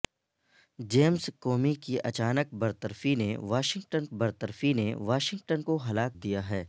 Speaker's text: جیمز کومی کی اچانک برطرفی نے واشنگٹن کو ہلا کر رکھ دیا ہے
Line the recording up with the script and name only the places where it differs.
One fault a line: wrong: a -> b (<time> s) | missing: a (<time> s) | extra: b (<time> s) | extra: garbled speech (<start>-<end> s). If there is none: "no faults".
extra: برطرفی نے واشنگٹن (4.1 s)
missing: کر رکھ (6.1 s)